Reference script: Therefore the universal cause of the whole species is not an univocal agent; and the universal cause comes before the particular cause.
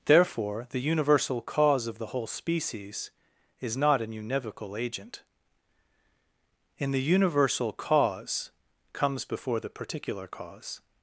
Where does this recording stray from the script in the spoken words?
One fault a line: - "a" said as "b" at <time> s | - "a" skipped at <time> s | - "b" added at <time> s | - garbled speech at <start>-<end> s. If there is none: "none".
- "and" said as "in" at 6.8 s